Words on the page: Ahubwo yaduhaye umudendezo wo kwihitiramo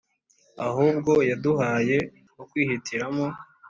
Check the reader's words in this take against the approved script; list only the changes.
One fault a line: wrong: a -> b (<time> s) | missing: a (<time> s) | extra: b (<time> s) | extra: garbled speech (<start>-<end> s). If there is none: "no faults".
missing: umudendezo (2.0 s)